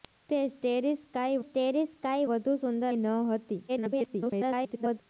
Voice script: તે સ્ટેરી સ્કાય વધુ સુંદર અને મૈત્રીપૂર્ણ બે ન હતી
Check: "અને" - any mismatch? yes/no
yes